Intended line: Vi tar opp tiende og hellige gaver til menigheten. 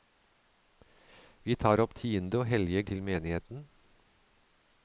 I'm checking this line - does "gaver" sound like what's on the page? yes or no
no